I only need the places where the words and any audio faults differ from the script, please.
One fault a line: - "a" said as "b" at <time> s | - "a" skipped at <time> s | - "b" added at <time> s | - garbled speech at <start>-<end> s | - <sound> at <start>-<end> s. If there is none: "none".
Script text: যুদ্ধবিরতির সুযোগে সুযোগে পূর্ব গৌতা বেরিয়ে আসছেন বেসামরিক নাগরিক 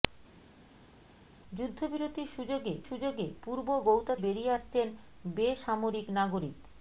none